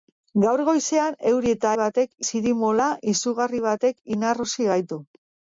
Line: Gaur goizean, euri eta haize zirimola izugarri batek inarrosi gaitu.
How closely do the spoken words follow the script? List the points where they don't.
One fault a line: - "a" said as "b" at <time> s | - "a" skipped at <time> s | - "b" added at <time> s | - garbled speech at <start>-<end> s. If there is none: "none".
- "haize" said as "batek" at 1.8 s